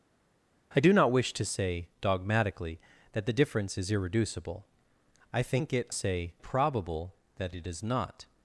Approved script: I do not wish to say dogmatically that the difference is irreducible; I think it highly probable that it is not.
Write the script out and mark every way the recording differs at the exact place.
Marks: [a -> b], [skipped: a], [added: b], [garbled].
I do not wish to say dogmatically that the difference is irreducible; I think it [highly -> say] probable that it is not.